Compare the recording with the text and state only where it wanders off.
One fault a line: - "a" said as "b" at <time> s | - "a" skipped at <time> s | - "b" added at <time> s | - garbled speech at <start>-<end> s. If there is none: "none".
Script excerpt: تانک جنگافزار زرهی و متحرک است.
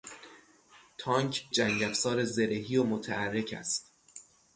none